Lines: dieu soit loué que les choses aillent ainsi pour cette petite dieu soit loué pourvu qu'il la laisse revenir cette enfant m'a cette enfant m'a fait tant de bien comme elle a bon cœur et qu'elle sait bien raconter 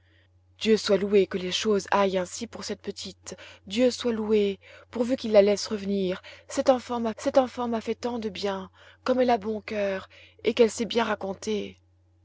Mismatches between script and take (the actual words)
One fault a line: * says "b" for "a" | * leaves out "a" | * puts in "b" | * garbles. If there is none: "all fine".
all fine